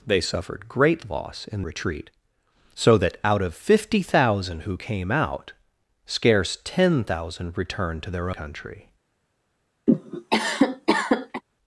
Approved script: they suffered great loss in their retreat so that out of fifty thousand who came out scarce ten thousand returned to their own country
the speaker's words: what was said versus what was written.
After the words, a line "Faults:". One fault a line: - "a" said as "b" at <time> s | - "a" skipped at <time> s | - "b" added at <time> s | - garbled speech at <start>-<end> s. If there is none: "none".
they suffered great loss in retreat so that out of fifty thousand who came out scarce ten thousand returned to their country
Faults:
- "their" skipped at 1.6 s
- "own" skipped at 8.3 s